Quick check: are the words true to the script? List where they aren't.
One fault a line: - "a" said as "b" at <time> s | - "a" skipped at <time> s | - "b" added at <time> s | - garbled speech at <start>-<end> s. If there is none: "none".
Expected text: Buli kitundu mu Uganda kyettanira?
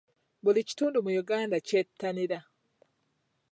none